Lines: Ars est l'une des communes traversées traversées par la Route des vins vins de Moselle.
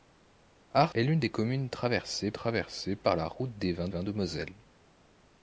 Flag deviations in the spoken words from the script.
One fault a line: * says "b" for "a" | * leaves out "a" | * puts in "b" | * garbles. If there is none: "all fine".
all fine